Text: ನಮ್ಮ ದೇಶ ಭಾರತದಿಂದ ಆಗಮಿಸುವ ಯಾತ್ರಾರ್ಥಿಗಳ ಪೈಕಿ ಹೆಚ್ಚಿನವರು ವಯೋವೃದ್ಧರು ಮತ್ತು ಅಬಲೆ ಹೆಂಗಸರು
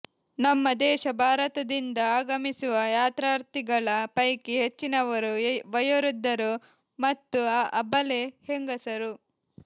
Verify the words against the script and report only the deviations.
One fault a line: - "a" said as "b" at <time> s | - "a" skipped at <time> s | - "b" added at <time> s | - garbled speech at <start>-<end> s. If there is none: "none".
none